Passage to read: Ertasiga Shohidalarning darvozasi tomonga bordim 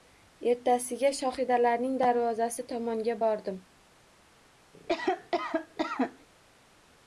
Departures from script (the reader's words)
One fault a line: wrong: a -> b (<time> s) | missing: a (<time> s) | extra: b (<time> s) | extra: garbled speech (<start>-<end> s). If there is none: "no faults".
no faults